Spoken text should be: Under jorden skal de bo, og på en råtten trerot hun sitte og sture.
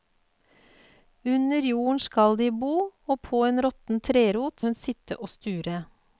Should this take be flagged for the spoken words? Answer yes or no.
no